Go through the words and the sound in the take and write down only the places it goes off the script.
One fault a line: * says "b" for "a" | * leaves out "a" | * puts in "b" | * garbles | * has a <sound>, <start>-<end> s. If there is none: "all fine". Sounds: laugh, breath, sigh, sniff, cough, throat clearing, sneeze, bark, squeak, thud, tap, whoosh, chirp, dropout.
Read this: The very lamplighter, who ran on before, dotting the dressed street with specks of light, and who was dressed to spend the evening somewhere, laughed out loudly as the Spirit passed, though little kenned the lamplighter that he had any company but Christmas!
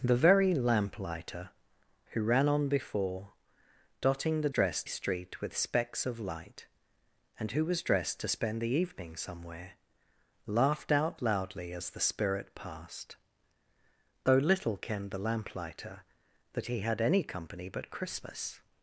all fine